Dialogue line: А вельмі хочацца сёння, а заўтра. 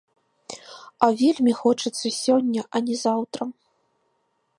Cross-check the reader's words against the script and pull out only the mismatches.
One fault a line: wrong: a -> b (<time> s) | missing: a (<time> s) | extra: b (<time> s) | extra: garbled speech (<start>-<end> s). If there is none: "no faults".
extra: не (2.9 s)